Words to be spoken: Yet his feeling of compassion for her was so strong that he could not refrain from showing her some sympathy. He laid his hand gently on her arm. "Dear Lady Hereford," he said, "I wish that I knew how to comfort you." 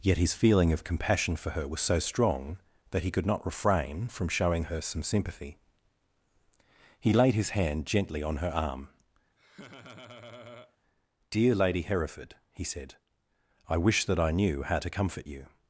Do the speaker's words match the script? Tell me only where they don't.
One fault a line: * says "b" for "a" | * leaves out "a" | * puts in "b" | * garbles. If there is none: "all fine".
all fine